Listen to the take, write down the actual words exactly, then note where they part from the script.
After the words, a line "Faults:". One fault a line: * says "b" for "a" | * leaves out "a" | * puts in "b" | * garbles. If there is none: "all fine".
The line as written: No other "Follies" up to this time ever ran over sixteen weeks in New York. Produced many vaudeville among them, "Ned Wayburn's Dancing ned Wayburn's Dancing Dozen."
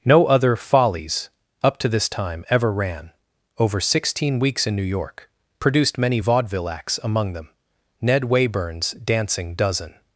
No other "Follies" up to this time ever ran over sixteen weeks in New York. Produced many vaudeville acts, among them, "Ned Wayburn's Dancing Dozen."
Faults:
* puts in "acts"
* leaves out "ned Wayburn's Dancing"